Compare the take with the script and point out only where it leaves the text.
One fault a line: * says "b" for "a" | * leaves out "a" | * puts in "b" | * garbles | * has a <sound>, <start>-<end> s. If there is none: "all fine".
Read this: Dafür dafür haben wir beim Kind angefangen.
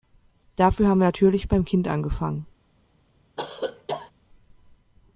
* leaves out "dafür"
* puts in "natürlich"
* has a cough, 3.4-4.1 s